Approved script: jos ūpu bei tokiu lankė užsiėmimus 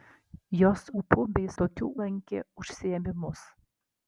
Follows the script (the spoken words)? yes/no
yes